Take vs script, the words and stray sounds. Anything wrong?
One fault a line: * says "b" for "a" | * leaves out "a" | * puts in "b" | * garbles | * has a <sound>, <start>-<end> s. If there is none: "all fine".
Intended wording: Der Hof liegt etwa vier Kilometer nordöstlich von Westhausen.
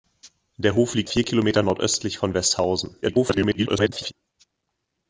* leaves out "etwa"
* garbles